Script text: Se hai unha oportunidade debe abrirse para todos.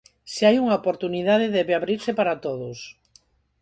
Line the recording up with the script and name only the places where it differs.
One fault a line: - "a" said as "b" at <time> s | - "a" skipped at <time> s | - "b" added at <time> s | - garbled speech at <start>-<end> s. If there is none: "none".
none